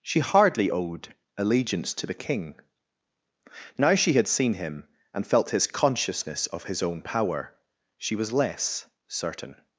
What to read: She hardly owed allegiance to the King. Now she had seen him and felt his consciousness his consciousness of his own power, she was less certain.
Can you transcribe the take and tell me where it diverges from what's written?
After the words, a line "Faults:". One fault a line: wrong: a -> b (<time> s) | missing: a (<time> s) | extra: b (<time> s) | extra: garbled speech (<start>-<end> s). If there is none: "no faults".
She hardly owed allegiance to the King. Now she had seen him and felt his consciousness of his own power, she was less certain.
Faults:
missing: his consciousness (6.5 s)